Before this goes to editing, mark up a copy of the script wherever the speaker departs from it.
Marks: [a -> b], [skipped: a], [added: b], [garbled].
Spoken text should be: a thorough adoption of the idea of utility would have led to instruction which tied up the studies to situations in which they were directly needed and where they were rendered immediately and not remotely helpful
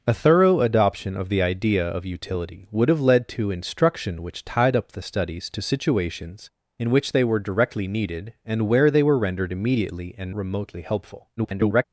a thorough adoption of the idea of utility would have led to instruction which tied up the studies to situations in which they were directly needed and where they were rendered immediately and [skipped: not] remotely helpful [garbled]